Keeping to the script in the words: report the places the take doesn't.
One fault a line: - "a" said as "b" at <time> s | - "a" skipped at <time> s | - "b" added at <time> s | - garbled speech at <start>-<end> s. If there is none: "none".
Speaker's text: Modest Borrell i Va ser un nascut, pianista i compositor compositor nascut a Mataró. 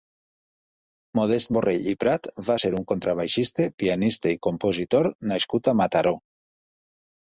- "Prat" added at 2.0 s
- "nascut" said as "contrabaixista" at 2.9 s
- "compositor" skipped at 5.1 s